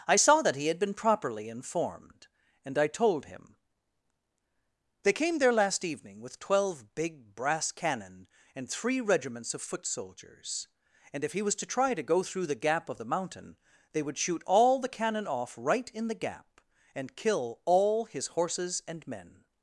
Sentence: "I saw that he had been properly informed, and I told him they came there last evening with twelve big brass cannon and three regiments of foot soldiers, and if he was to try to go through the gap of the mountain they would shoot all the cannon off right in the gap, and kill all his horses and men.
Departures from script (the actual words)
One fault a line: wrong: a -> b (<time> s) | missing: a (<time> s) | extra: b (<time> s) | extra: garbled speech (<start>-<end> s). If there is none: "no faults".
no faults